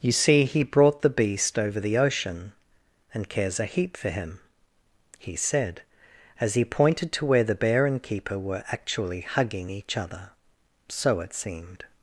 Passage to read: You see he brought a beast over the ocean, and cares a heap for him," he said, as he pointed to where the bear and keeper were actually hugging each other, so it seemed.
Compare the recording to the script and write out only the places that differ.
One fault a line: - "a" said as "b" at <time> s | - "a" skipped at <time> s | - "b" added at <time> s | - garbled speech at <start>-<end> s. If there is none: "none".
- "a" said as "the" at 1.0 s